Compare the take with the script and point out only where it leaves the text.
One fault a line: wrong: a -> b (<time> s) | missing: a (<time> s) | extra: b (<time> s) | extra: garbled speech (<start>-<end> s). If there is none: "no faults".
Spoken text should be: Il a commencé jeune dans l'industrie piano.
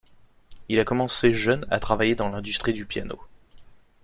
extra: à travailler (1.7 s)
extra: du (2.7 s)